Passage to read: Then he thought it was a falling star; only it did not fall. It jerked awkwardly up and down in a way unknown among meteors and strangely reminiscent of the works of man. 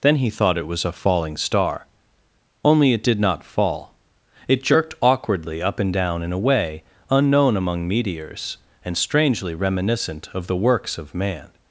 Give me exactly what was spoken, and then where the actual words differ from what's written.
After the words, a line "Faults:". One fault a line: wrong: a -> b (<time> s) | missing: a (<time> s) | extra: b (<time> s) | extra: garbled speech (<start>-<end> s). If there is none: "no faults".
Then he thought it was a falling star; only it did not fall. It jerked awkwardly up and down in a way unknown among meteors and strangely reminiscent of the works of man.
Faults:
no faults